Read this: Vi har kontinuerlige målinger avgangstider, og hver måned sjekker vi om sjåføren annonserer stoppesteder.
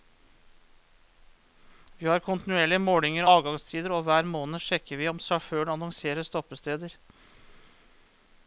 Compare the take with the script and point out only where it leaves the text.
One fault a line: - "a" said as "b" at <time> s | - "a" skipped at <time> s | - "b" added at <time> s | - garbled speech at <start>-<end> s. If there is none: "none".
none